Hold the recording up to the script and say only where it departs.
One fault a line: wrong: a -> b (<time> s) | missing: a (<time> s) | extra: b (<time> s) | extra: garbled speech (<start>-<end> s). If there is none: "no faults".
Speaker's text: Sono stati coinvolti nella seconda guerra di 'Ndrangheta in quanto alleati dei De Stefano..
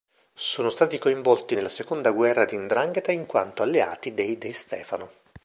no faults